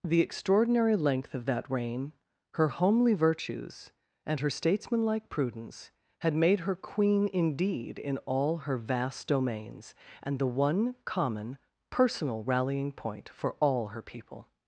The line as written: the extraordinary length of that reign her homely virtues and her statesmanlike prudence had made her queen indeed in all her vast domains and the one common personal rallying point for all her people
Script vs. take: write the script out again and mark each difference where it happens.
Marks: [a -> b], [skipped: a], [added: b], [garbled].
the extraordinary length of that reign her homely virtues and her statesmanlike prudence had made her queen indeed in all her vast domains and the one common personal rallying point for all her people